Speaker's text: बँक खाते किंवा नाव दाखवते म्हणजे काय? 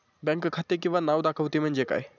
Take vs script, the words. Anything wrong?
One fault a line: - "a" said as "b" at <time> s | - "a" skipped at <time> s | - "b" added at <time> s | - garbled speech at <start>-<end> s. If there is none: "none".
none